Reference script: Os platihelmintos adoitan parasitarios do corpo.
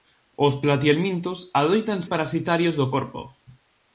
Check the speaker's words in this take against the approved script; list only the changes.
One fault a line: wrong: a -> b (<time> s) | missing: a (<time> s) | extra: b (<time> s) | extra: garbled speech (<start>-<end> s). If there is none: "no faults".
no faults